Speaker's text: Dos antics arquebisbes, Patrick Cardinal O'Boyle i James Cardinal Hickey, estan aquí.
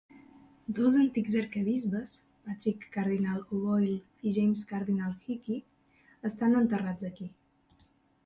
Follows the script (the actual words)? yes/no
no